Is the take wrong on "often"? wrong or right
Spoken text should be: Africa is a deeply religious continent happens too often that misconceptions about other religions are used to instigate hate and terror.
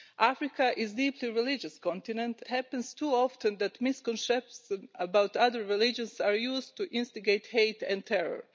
right